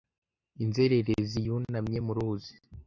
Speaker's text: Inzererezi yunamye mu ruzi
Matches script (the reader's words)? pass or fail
pass